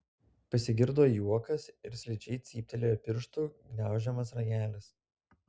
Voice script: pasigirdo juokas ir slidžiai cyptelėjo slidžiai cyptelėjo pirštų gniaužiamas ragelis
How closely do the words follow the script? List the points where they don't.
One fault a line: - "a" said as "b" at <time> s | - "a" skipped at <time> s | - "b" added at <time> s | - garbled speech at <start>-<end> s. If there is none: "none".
- "slidžiai cyptelėjo" skipped at 3.0 s